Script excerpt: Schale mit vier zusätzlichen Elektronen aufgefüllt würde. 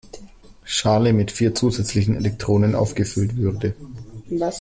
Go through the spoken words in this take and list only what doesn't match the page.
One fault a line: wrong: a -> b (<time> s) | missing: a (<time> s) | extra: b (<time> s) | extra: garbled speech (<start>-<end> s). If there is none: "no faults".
no faults